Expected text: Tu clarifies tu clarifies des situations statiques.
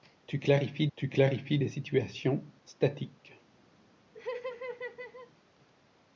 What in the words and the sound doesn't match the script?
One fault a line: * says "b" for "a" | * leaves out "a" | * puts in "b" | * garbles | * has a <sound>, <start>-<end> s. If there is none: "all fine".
* has a laugh, 4.1-5.3 s